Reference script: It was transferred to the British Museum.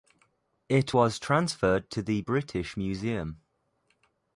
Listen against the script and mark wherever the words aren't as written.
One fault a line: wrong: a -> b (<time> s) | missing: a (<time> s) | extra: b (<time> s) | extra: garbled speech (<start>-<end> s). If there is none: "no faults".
no faults